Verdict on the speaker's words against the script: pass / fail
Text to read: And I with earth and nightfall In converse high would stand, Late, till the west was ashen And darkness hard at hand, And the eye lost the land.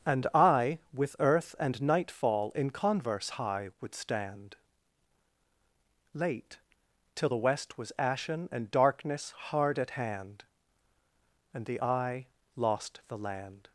pass